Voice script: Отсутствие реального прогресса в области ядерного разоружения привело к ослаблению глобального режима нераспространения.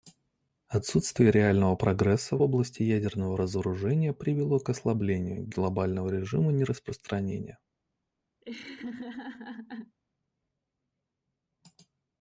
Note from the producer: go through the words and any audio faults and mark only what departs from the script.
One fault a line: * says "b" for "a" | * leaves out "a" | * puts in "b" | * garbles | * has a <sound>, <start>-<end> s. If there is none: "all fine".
* has a laugh, 8.4-10.0 s